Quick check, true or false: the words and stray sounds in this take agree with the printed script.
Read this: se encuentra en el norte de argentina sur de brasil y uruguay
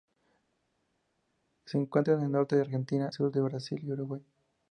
true